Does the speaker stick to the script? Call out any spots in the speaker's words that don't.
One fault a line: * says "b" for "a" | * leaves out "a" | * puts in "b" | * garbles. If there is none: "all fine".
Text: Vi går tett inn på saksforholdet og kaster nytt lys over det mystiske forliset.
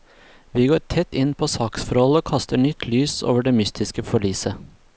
all fine